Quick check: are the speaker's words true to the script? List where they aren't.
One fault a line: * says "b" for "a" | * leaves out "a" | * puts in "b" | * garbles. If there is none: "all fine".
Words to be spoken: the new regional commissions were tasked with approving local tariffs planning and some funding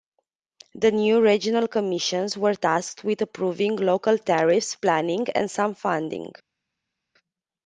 all fine